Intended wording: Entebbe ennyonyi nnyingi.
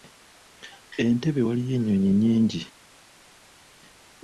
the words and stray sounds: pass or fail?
fail